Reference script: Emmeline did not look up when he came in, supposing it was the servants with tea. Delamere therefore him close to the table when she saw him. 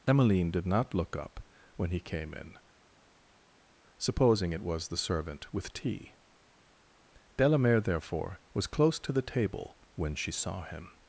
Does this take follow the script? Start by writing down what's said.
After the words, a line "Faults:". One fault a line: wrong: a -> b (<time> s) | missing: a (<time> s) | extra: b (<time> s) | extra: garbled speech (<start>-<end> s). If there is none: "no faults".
Emmeline did not look up when he came in, supposing it was the servant with tea. Delamere therefore was close to the table when she saw him.
Faults:
wrong: servants -> servant (5.0 s)
wrong: him -> was (8.5 s)